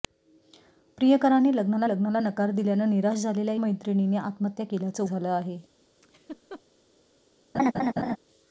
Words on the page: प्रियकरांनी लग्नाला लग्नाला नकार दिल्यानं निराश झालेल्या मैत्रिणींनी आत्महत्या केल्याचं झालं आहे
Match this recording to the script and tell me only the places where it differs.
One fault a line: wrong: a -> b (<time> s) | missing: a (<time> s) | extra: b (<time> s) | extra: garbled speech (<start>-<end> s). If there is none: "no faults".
no faults